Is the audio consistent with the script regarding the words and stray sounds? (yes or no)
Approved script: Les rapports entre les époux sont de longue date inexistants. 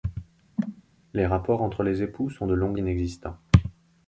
no